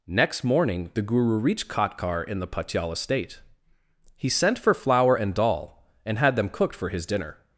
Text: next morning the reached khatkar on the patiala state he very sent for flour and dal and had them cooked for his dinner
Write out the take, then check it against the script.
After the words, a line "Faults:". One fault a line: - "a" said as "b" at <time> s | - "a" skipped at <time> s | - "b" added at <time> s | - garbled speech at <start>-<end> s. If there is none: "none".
next morning the guru reached khatkar in the patiala state he sent for flour and dal and had them cooked for his dinner
Faults:
- "guru" added at 1.0 s
- "on" said as "in" at 2.2 s
- "very" skipped at 4.3 s